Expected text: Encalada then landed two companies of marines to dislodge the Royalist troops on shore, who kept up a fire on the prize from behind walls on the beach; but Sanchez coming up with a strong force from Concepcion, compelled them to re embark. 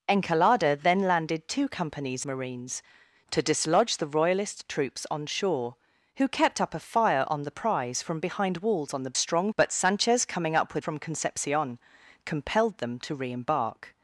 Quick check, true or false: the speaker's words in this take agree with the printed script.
false